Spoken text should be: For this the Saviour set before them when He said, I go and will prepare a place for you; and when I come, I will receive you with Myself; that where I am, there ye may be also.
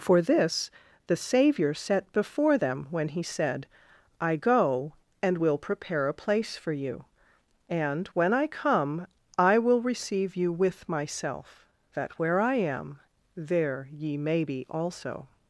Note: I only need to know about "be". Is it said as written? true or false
true